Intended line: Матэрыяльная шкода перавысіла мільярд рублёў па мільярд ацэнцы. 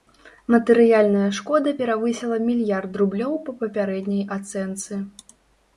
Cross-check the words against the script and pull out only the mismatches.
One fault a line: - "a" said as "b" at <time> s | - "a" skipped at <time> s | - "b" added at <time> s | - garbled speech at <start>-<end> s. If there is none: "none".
- "мільярд" said as "папярэдняй" at 3.7 s